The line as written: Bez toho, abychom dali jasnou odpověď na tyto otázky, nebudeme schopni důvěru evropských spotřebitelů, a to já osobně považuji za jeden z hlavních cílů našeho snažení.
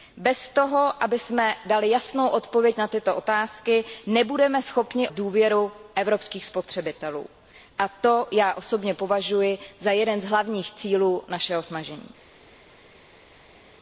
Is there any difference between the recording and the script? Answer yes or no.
no